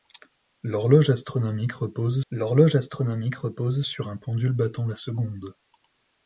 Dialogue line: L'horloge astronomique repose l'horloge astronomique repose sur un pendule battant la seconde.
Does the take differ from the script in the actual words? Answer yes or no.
no